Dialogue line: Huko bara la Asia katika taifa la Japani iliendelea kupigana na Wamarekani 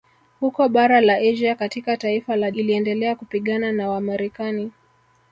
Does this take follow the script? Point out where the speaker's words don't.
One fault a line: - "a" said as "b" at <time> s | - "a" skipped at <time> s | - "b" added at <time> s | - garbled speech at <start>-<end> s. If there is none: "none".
- "Japani" skipped at 2.5 s